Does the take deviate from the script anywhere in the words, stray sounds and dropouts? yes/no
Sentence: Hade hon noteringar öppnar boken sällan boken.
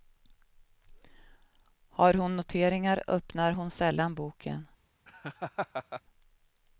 yes